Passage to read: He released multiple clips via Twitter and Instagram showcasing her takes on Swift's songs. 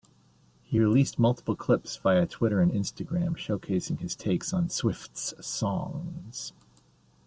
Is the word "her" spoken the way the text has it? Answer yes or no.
no